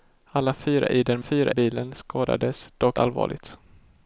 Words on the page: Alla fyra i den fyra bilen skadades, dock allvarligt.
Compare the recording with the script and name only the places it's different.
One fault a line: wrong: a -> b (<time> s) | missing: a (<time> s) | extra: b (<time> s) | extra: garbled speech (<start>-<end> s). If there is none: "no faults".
no faults